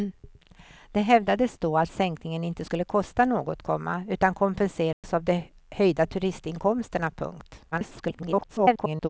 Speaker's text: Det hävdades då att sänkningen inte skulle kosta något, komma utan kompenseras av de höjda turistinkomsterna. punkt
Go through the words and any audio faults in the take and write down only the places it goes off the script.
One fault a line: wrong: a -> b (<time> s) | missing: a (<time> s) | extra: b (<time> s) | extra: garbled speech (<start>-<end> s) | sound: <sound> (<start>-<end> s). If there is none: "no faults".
sound: dropout (4.9-5.0 s)
extra: garbled speech (7.7-9.1 s)